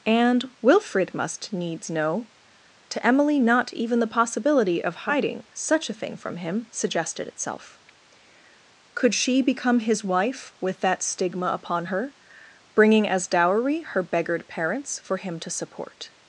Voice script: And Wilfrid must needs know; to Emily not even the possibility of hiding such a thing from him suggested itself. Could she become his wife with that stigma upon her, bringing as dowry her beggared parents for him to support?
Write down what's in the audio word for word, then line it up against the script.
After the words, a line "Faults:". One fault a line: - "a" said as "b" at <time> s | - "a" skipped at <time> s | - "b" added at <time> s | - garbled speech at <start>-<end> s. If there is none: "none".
And Wilfrid must needs know; to Emily not even the possibility of hiding such a thing from him suggested itself. Could she become his wife with that stigma upon her, bringing as dowry her beggared parents for him to support?
Faults:
none